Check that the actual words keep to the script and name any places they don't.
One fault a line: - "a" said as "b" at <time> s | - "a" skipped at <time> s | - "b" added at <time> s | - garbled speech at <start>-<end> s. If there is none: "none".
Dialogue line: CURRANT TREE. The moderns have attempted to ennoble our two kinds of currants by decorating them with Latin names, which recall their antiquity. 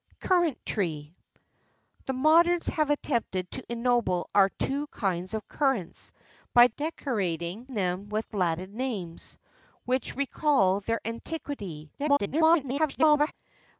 - garbled speech at 12.0-13.3 s